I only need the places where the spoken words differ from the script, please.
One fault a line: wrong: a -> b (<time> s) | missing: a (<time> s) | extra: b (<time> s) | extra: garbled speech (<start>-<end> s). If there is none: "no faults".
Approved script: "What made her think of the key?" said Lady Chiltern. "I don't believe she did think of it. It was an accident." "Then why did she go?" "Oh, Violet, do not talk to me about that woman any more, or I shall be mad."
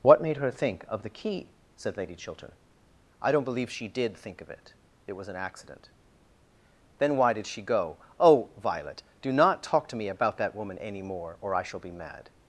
no faults